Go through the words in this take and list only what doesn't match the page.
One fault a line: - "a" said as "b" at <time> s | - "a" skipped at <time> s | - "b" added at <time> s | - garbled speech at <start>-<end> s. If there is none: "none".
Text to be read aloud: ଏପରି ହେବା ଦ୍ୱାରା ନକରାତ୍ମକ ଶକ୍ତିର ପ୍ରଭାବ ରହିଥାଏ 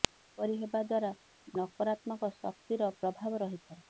none